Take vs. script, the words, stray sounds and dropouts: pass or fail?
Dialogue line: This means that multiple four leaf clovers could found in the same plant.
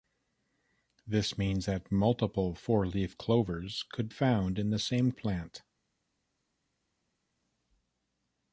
pass